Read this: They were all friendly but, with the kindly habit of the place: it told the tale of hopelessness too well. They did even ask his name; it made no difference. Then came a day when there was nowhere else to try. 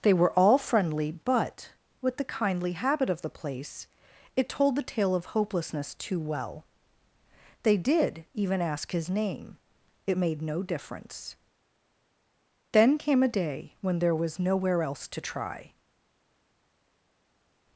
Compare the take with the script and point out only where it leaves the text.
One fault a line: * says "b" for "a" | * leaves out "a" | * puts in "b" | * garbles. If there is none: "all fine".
all fine